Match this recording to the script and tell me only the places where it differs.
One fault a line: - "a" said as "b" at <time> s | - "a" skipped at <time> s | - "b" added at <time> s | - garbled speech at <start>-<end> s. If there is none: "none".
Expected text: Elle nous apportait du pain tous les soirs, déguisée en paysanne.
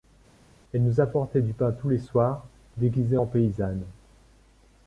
none